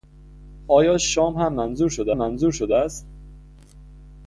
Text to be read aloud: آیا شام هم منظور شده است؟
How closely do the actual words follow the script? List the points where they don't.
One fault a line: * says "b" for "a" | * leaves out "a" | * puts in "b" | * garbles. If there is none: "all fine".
* puts in "منظور شده"